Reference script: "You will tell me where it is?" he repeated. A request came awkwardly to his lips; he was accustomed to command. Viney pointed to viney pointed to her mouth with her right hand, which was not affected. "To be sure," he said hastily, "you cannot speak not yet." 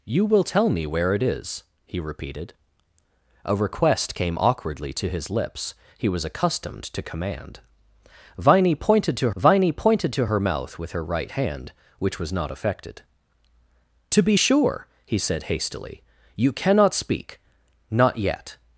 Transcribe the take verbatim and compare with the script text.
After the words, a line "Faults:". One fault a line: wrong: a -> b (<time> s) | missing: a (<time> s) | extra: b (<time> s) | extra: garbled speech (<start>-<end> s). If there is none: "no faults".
"You will tell me where it is?" he repeated. A request came awkwardly to his lips; he was accustomed to command. Viney pointed to viney pointed to her mouth with her right hand, which was not affected. "To be sure," he said hastily, "you cannot speak not yet."
Faults:
no faults